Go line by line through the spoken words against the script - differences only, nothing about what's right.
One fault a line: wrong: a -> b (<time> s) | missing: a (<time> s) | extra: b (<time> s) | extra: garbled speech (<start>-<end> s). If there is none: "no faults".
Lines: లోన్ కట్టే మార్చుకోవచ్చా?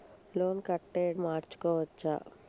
no faults